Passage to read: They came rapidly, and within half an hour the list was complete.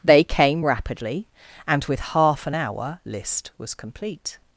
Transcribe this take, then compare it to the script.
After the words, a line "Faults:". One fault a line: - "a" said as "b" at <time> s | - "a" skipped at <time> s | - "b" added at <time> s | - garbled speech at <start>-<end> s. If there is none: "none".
They came rapidly, and with half an hour list was complete.
Faults:
- "within" said as "with" at 1.8 s
- "the" skipped at 3.0 s